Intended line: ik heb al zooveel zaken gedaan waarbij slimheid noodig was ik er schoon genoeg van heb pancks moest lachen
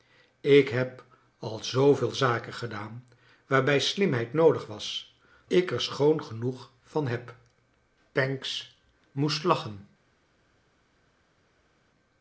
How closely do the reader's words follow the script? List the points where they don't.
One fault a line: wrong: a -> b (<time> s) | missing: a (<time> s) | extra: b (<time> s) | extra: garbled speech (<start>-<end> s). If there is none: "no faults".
no faults